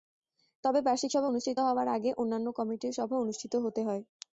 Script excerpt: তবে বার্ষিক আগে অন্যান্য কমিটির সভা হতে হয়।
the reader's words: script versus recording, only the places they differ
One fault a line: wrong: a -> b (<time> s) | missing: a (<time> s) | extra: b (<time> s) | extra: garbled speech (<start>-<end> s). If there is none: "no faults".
extra: সভা অনুষ্ঠিত হওয়ার (1.1 s)
extra: অনুষ্ঠিত (3.2 s)